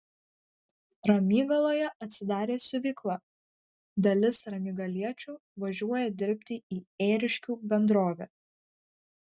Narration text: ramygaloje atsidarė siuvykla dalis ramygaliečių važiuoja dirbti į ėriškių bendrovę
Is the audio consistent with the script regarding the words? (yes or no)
yes